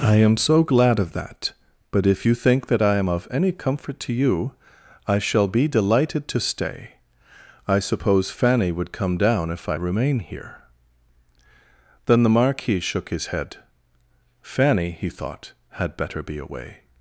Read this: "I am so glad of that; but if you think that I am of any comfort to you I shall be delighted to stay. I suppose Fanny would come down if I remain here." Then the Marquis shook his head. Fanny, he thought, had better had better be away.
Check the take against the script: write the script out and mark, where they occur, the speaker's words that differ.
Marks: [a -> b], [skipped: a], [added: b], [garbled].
"I am so glad of that; but if you think that I am of any comfort to you I shall be delighted to stay. I suppose Fanny would come down if I remain here." Then the Marquis shook his head. Fanny, he thought, had better [skipped: had better] be away.